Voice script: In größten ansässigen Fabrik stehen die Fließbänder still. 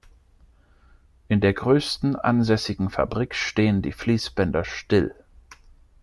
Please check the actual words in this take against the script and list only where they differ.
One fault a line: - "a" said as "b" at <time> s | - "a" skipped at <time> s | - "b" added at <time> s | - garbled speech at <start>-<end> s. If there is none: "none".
- "der" added at 1.4 s